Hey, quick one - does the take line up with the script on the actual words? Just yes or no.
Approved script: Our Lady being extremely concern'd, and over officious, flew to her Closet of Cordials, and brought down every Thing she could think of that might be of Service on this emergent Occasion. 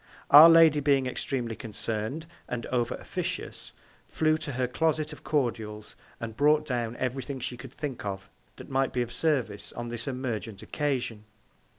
yes